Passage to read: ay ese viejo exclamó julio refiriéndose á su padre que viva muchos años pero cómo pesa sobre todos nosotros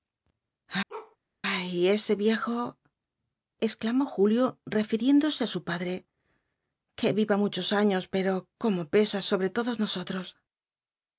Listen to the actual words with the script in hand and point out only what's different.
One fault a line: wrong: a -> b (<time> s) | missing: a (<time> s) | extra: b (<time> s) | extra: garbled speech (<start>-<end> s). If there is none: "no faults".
no faults